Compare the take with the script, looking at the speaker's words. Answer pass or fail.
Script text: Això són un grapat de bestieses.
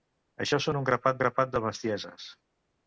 fail